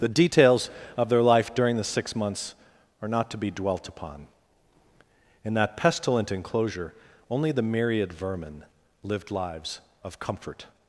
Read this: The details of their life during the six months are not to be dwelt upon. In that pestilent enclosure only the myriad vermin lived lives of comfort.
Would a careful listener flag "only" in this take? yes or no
no